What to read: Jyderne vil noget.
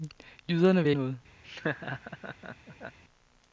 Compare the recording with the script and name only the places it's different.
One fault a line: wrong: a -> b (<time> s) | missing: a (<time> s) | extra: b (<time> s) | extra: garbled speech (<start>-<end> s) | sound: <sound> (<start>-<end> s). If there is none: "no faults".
sound: laugh (1.4-3.0 s)